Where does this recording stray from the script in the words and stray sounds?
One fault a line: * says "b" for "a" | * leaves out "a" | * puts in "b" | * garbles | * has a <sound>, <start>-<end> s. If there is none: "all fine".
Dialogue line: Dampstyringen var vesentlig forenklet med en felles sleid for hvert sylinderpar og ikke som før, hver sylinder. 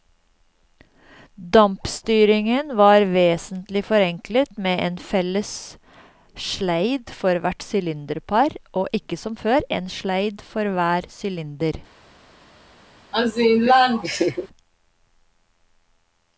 * puts in "en sleid for"
* has a laugh, 13.1-14.5 s